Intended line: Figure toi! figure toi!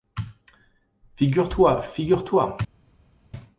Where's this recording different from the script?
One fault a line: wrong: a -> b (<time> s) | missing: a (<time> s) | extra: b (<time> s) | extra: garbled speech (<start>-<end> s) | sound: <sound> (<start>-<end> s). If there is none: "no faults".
no faults